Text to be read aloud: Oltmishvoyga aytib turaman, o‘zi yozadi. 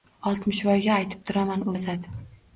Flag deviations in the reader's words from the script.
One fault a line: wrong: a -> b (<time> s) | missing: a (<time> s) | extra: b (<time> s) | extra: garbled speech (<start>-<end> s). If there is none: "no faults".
missing: o‘zi (1.7 s)